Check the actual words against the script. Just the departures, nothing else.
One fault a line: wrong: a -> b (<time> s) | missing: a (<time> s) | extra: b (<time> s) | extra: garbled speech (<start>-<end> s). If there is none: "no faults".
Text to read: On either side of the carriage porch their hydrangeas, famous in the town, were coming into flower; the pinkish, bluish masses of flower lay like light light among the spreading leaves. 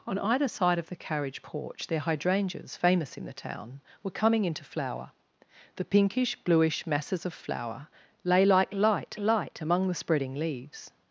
no faults